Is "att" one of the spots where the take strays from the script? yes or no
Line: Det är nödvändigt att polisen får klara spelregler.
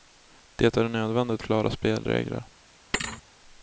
yes